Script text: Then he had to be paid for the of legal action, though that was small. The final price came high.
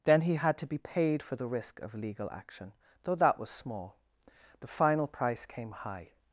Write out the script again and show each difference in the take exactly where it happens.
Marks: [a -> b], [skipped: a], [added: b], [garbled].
Then he had to be paid for the [added: risk] of legal action, though that was small. The final price came high.